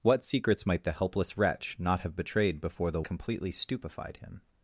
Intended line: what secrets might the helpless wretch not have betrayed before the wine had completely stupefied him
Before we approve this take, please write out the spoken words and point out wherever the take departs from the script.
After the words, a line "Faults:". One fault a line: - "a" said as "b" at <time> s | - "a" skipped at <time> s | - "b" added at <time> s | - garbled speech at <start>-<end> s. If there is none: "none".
what secrets might the helpless wretch not have betrayed before the completely stupefied him
Faults:
- "wine had" skipped at 3.0 s